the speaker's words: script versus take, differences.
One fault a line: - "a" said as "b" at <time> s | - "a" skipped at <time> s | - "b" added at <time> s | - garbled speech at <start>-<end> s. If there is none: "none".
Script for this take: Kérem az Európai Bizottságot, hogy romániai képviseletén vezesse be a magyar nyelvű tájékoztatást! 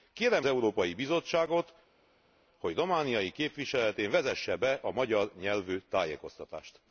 - "az" skipped at 0.5 s